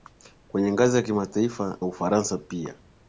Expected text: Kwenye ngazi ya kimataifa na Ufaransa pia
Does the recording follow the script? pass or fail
fail